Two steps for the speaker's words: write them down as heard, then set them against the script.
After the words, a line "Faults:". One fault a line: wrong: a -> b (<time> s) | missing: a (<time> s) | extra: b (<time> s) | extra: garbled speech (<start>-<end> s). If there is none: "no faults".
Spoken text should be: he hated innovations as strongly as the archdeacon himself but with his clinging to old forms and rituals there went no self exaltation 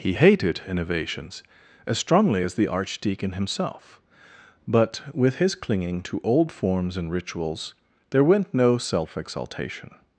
he hated innovations as strongly as the archdeacon himself but with his clinging to old forms and rituals there went no self exaltation
Faults:
no faults